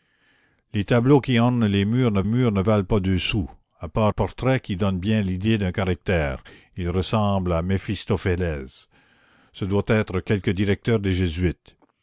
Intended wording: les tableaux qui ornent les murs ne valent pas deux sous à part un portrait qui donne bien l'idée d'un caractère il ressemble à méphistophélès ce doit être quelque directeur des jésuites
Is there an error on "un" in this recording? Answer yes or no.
yes